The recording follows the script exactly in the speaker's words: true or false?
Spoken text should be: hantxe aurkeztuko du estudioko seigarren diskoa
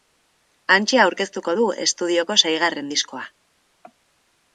true